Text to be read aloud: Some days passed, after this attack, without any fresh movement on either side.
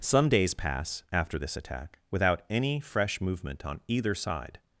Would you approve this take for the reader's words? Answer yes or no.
no